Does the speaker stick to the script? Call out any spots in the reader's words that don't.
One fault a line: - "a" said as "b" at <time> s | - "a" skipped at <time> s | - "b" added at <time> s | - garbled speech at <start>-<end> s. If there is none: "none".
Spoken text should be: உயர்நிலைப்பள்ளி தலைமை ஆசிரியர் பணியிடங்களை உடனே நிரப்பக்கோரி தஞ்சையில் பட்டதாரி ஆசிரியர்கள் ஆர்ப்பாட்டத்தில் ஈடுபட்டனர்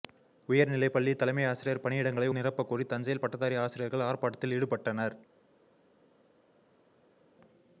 - "உடனே" skipped at 2.3 s